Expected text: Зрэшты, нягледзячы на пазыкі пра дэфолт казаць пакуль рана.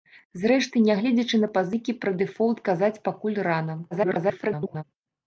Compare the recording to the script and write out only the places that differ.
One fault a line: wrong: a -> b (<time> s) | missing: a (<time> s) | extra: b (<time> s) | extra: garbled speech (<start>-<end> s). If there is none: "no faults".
extra: garbled speech (3.9-4.8 s)